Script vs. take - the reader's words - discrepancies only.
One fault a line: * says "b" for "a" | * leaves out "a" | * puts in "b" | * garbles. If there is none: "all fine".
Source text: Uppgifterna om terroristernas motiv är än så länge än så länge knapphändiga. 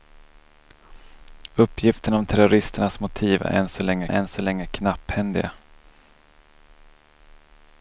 all fine